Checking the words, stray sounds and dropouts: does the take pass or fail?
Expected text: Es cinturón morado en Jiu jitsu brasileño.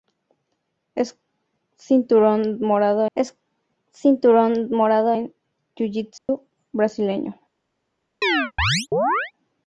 fail